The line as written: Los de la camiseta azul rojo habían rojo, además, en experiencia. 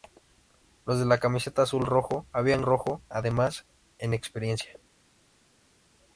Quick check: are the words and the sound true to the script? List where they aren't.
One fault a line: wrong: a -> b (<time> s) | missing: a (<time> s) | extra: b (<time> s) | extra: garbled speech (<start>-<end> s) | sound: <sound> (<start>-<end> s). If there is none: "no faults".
no faults